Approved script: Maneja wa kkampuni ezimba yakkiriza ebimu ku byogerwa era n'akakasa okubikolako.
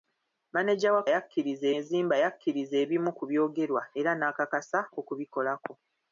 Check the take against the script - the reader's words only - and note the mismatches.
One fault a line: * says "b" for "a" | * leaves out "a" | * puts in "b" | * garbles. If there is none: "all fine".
* says "yakkiriza" for "kkampuni"